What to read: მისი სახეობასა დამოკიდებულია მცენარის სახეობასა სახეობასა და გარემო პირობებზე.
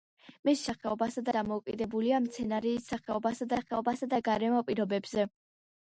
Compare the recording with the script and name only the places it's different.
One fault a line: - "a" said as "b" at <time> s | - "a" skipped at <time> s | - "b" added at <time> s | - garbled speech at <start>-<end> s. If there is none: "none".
none